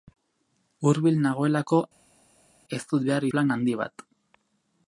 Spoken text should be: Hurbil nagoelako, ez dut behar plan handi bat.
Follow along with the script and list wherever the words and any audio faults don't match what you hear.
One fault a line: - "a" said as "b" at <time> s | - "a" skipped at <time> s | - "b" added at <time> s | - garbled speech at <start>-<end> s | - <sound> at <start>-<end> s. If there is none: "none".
none